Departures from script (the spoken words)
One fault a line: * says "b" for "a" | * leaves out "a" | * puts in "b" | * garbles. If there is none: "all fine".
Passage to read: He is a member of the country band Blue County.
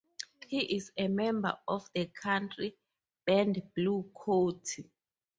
all fine